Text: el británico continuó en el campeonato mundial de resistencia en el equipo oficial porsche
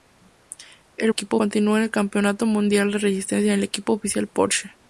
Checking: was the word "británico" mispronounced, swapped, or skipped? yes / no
yes